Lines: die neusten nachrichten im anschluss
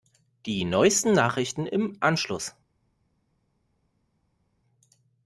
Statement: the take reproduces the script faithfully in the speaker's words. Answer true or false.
true